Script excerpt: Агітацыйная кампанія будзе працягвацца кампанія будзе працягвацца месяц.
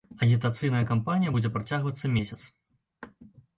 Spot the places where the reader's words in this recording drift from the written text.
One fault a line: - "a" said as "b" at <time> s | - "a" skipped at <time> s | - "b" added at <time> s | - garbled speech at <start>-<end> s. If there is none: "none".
- "кампанія будзе працягвацца" skipped at 2.1 s